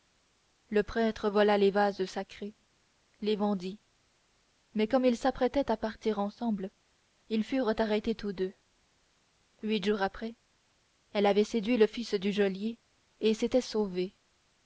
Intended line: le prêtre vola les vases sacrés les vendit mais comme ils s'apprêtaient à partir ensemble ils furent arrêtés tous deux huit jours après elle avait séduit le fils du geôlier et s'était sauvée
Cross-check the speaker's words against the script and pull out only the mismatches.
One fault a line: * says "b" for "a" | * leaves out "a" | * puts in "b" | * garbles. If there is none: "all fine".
all fine